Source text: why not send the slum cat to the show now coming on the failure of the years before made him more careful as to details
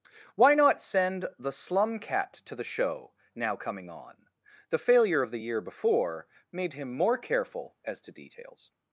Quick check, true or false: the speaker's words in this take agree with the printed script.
false